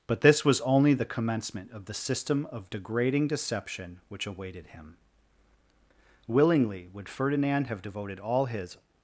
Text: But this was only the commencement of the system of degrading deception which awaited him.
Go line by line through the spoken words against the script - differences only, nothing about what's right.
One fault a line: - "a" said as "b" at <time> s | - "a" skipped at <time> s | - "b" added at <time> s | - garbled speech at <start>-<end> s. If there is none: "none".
- "Willingly would Ferdinand have devoted all his" added at 6.3 s